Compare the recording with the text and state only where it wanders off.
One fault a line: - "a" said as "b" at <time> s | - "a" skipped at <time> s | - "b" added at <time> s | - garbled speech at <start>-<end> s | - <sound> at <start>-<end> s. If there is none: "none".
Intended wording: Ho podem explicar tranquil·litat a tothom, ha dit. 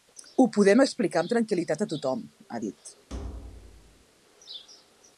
- "amb" added at 1.2 s
- thud at 3.1-4.0 s